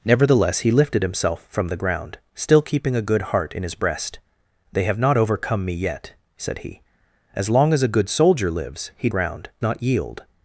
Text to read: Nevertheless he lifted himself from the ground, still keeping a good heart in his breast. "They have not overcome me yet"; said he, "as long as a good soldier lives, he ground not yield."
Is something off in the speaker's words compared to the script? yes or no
no